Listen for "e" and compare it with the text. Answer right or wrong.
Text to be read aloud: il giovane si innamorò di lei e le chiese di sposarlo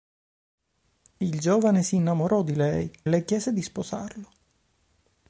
wrong